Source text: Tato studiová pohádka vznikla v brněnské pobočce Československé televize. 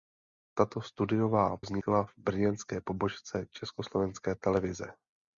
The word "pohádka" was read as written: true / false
false